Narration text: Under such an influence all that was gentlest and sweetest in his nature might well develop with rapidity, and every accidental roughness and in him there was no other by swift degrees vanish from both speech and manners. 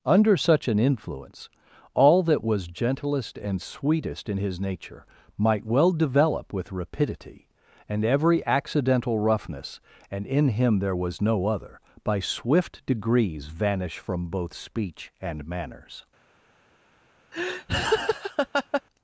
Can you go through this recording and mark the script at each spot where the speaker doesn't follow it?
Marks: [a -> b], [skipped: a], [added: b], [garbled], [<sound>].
Under such an influence all that was gentlest and sweetest in his nature might well develop with rapidity, and every accidental roughness and in him there was no other by swift degrees vanish from both speech and manners. [laugh]